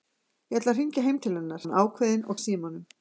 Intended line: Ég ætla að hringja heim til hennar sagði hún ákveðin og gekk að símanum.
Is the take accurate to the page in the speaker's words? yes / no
no